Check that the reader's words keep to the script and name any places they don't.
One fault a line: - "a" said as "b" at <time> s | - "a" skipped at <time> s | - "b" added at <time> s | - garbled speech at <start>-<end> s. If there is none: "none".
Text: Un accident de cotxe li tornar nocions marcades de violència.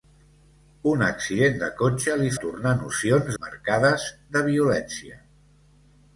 none